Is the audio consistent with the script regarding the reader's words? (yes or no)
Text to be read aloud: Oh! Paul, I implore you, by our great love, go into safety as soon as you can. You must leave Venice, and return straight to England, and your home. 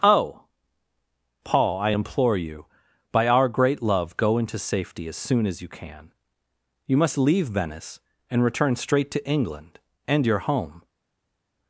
yes